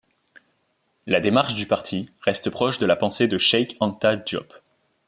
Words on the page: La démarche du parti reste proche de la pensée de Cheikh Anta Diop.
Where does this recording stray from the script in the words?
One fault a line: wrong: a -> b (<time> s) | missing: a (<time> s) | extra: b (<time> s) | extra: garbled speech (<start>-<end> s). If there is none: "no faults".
no faults